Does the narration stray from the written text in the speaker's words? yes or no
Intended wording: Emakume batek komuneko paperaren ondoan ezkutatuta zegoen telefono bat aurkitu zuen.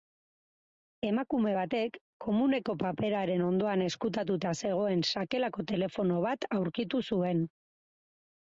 yes